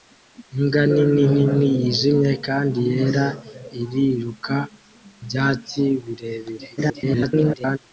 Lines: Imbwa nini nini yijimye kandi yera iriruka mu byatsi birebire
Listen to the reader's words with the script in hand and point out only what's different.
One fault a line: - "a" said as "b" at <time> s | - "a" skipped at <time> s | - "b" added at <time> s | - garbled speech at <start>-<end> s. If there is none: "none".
- "mu" skipped at 4.5 s
- garbled speech at 6.8-7.8 s